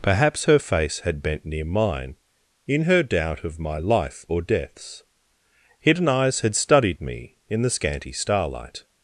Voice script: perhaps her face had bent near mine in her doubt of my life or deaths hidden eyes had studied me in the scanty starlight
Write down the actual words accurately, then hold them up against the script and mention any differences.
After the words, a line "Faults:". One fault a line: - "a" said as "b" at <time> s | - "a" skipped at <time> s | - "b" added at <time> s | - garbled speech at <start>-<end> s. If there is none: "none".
perhaps her face had bent near mine in her doubt of my life or deaths hidden eyes had studied me in the scanty starlight
Faults:
none